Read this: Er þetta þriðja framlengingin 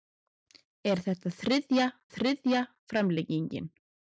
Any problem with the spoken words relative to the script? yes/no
yes